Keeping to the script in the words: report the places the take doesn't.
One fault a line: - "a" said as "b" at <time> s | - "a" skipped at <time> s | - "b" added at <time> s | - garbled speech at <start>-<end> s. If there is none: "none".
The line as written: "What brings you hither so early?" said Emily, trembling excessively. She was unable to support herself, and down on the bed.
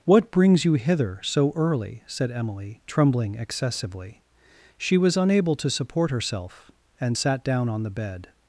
- "sat" added at 7.2 s